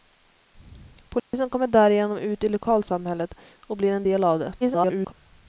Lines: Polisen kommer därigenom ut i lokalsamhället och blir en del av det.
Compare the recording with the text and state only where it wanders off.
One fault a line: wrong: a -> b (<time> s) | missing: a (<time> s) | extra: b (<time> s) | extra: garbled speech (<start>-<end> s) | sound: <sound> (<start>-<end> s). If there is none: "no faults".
sound: dropout (1.2-1.3 s)
extra: garbled speech (4.6-5.1 s)